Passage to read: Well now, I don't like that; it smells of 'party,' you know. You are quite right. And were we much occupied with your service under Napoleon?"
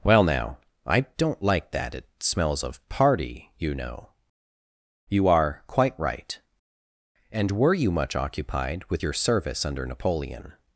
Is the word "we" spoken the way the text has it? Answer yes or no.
no